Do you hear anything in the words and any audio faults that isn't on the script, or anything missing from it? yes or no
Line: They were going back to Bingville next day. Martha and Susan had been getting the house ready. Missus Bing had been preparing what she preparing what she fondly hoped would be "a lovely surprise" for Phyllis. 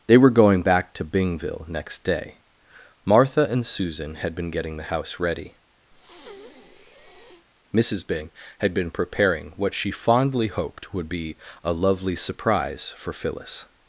yes